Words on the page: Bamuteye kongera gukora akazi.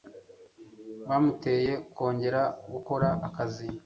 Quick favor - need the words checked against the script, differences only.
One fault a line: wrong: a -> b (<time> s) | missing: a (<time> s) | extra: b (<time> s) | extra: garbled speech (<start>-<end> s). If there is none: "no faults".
no faults